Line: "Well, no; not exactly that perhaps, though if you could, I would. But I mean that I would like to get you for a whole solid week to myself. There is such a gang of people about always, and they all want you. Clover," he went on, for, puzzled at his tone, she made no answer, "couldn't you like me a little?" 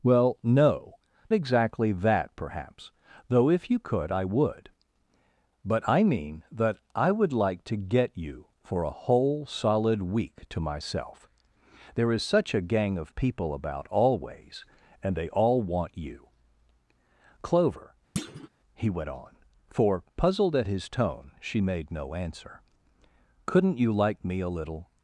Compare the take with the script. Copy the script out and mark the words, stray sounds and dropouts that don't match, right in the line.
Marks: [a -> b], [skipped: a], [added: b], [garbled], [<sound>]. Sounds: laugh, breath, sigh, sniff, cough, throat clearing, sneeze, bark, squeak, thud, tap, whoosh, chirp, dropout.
"Well, no; [skipped: not] exactly that perhaps, though if you could, I would. But I mean that I would like to get you for a whole solid week to myself. There is such a gang of people about always, and they all want you. Clover," [thud] he went on, for, puzzled at his tone, she made no answer, "couldn't you like me a little?"